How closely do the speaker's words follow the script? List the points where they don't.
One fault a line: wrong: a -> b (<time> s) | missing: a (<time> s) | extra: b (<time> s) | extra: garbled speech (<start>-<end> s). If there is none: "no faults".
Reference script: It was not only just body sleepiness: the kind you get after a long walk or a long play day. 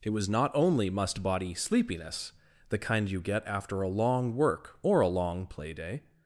wrong: just -> must (0.9 s)
wrong: walk -> work (4.3 s)